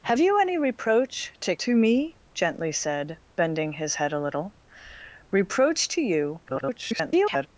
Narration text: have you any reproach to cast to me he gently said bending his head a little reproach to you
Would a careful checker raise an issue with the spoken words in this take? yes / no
yes